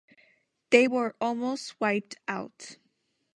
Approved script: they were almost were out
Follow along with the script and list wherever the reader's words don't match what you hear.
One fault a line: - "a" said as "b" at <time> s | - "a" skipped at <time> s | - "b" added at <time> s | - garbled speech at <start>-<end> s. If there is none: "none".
- "were" said as "wiped" at 1.8 s